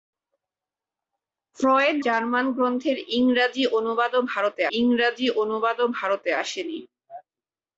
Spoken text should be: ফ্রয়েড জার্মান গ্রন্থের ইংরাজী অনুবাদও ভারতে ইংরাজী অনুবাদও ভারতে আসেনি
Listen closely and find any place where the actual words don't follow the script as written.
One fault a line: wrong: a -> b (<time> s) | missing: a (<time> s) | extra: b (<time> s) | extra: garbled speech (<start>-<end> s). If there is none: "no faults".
no faults